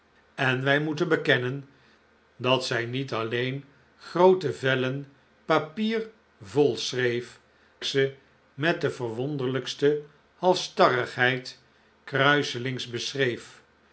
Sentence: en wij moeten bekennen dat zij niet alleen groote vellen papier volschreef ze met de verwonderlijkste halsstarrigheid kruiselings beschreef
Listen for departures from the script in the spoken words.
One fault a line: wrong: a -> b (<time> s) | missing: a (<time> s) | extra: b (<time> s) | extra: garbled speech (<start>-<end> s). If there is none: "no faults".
no faults